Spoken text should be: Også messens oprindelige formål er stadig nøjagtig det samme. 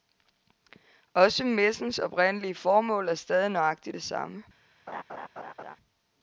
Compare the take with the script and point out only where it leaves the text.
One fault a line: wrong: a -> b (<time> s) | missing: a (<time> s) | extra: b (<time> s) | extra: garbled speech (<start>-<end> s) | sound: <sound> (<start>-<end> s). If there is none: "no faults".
sound: laugh (4.9-5.8 s)